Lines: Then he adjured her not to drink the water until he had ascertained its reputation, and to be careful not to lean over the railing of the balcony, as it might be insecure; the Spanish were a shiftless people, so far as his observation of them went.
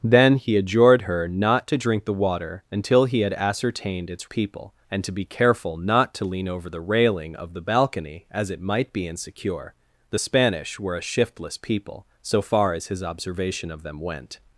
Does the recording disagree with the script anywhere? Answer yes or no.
yes